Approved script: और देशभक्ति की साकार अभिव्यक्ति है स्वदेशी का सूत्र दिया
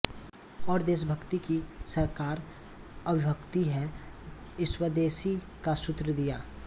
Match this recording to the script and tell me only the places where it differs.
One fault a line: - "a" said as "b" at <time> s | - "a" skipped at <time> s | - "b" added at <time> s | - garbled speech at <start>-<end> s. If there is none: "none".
none